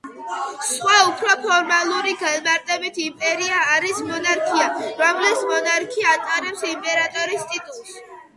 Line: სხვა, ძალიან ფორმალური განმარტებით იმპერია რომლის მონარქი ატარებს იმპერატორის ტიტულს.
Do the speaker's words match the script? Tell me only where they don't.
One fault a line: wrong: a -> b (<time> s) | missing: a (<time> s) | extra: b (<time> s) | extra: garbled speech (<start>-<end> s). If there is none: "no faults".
wrong: ძალიან -> უფრო (1.1 s)
extra: არის მონარქია (3.7 s)